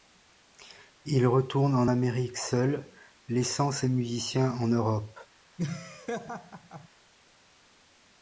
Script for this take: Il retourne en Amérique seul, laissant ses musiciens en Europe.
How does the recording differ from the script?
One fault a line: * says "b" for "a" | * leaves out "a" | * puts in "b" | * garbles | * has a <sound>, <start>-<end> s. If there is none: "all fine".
* has a laugh, 5.6-6.9 s